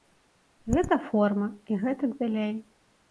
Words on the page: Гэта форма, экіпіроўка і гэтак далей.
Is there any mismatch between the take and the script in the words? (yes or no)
yes